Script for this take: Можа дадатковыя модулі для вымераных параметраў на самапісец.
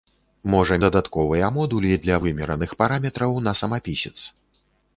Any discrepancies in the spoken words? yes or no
no